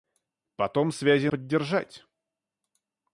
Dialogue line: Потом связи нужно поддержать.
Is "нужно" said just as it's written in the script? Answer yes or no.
no